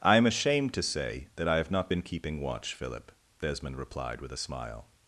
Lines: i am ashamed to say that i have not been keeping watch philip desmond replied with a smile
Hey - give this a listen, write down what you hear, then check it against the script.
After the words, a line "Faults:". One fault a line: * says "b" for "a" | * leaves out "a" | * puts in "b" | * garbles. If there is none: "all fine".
i am ashamed to say that i have not been keeping watch philip desmond replied with a smile
Faults:
all fine